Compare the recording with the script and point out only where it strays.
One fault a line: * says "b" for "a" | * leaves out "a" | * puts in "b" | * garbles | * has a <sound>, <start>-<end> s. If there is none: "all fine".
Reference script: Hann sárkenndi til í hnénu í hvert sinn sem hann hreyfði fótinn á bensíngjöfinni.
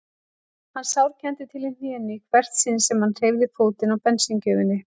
all fine